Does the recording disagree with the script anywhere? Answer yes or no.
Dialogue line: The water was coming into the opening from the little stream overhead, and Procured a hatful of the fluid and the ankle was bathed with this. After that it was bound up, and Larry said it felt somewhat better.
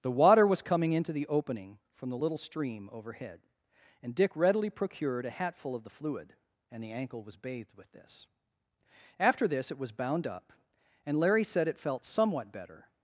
yes